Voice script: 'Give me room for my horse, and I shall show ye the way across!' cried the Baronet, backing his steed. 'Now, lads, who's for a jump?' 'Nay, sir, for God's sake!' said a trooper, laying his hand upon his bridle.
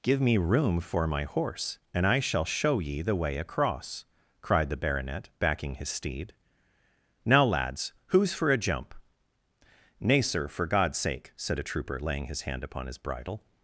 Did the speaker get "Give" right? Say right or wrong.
right